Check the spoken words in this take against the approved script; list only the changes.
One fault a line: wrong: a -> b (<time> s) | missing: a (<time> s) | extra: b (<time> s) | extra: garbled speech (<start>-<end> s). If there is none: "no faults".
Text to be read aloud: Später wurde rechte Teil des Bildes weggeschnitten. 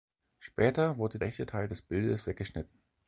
no faults